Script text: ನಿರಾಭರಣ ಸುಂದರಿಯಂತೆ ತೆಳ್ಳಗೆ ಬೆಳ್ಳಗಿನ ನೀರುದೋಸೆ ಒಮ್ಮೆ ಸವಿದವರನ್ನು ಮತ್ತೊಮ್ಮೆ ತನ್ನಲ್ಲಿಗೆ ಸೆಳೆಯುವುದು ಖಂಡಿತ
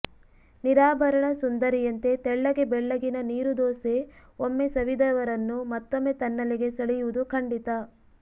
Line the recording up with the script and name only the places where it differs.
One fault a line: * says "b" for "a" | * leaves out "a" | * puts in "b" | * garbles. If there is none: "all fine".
all fine